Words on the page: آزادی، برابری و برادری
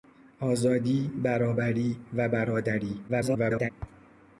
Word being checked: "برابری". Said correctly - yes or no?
yes